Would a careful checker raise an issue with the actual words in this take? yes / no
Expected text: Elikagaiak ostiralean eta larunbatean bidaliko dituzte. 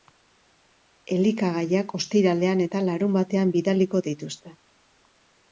no